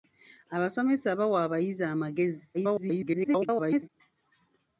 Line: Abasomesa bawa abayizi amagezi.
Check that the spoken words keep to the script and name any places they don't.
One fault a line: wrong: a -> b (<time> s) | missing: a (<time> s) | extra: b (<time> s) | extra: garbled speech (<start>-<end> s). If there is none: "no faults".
extra: garbled speech (2.5-3.9 s)